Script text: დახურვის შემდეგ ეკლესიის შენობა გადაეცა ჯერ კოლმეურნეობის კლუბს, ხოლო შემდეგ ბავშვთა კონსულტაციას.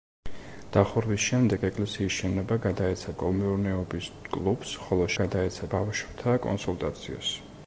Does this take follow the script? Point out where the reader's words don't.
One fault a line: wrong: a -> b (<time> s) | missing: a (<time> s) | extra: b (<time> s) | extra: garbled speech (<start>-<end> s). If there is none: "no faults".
missing: ჯერ (3.1 s)
wrong: შემდეგ -> გადაეცა (5.2 s)